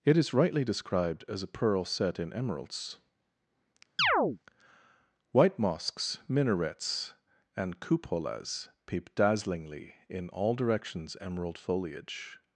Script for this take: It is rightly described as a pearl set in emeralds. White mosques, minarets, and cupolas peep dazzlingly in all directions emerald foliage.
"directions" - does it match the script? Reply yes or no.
yes